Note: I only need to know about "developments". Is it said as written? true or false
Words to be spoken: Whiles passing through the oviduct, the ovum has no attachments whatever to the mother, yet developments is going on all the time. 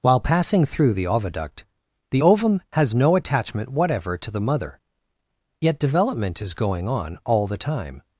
false